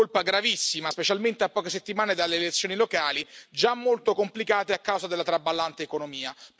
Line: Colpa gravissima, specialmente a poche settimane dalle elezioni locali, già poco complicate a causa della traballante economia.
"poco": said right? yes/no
no